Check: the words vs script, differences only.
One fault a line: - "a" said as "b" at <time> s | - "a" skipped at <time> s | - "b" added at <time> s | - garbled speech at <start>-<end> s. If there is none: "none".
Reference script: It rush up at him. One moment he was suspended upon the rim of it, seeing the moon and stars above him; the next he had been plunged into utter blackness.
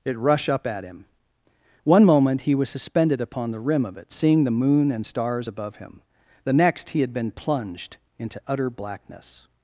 none